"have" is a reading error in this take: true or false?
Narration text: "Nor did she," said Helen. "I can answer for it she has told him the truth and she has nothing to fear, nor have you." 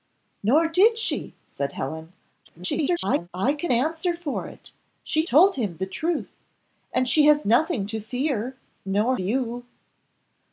true